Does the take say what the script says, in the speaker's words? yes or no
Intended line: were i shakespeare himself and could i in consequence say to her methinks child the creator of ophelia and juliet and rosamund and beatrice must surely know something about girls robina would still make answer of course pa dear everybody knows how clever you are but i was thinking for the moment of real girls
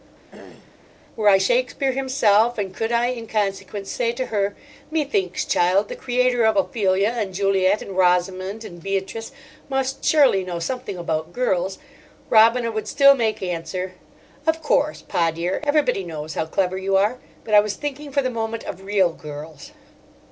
yes